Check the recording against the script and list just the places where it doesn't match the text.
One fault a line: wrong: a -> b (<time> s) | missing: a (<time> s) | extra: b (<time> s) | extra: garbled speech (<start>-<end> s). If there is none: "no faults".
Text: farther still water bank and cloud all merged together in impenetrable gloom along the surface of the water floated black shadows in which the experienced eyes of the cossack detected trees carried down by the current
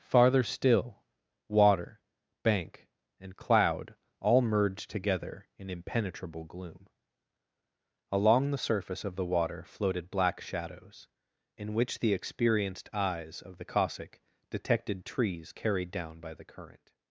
no faults